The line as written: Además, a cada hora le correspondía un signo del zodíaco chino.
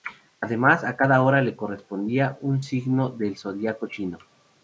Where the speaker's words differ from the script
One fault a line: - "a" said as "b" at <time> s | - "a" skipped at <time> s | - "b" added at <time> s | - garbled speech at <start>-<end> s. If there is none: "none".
none